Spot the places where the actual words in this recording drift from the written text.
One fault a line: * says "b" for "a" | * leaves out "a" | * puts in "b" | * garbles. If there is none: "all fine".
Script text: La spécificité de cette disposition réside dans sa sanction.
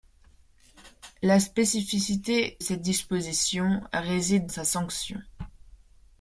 * leaves out "de"
* leaves out "dans"